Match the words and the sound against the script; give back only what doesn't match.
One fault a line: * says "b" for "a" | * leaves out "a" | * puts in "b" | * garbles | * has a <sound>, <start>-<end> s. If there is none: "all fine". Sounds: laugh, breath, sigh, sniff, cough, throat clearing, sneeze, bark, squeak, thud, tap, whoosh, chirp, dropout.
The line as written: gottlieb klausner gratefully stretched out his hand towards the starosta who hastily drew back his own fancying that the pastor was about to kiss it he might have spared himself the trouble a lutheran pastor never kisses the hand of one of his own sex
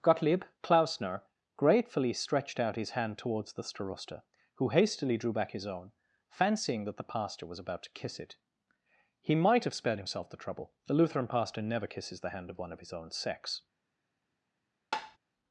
* says "the" for "a"
* has a tap, 14.9-15.2 s